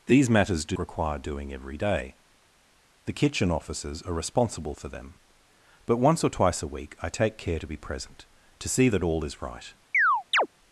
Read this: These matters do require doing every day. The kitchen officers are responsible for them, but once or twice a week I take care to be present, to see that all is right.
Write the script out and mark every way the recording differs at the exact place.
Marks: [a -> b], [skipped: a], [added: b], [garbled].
These matters do require doing every day. The kitchen officers are responsible for them, but once or twice a week I take care to be present, to see that all is right.